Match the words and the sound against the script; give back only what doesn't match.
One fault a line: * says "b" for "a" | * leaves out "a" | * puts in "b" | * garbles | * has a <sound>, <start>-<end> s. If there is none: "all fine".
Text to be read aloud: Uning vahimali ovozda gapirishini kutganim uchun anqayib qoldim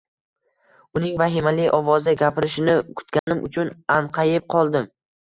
* has a dropout, 3.2-3.3 s